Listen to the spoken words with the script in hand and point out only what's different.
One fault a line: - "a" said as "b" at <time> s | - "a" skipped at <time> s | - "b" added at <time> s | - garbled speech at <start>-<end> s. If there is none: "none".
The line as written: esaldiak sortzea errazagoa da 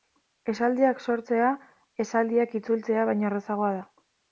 - "esaldiak itzultzea baino" added at 2.1 s